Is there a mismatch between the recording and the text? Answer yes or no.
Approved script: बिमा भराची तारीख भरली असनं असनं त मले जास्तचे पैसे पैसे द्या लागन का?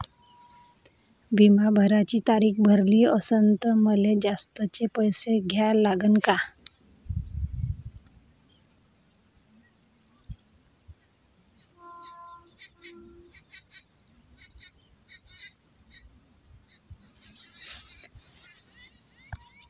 yes